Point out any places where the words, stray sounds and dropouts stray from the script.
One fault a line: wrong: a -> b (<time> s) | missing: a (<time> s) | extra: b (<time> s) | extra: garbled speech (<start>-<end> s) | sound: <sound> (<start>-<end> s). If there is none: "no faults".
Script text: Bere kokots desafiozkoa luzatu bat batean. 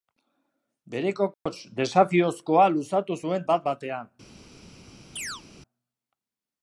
sound: dropout (1.3-1.5 s)
extra: zuen (3.3 s)
sound: chirp (5.2-5.4 s)